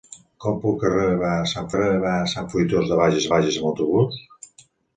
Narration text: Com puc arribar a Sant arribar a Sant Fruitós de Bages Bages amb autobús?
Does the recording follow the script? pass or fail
pass